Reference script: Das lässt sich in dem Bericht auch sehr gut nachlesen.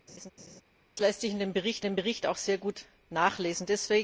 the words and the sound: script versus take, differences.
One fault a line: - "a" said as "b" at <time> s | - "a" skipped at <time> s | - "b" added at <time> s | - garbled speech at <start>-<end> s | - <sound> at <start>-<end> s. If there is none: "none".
- laugh at 0.1-0.6 s
- "dem Bericht" added at 1.8 s